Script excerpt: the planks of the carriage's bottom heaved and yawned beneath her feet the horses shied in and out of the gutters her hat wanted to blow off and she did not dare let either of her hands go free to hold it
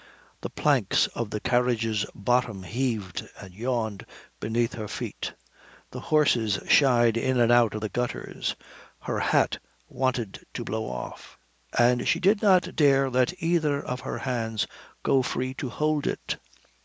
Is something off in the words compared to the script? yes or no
no